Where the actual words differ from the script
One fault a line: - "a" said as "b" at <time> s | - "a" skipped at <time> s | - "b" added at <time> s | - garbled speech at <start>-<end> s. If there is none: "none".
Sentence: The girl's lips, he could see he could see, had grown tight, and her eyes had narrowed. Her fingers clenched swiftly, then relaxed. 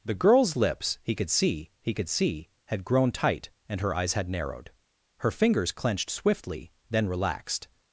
none